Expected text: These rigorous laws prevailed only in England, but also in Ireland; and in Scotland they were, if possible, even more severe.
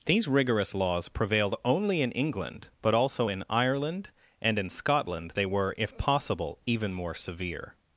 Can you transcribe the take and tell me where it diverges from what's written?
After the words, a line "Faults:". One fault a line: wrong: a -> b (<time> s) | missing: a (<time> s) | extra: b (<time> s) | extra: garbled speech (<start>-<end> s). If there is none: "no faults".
These rigorous laws prevailed only in England, but also in Ireland; and in Scotland they were, if possible, even more severe.
Faults:
no faults